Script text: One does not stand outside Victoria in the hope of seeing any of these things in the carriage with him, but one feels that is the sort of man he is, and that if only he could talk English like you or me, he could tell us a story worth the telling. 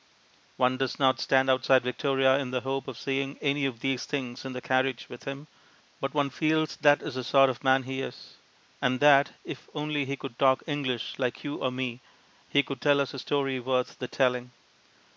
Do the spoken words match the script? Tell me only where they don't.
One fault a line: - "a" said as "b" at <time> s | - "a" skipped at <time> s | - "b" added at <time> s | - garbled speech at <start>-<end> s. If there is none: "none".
none